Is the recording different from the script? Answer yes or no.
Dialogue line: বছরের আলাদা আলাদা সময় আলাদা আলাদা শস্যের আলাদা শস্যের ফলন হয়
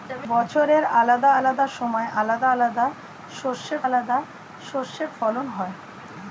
no